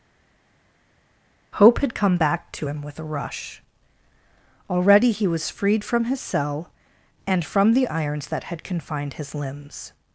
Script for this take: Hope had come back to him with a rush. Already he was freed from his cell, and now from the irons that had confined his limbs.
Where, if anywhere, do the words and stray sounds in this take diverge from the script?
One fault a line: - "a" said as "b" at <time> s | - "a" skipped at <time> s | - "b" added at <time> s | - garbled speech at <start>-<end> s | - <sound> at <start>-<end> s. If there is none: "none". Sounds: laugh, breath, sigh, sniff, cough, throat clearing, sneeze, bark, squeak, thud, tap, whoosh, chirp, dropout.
- "now" skipped at 7.4 s